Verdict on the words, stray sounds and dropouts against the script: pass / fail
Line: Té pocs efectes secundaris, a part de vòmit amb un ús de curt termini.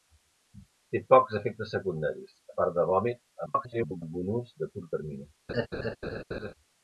fail